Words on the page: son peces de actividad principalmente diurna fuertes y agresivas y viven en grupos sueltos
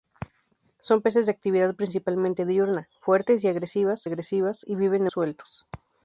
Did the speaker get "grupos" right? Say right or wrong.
wrong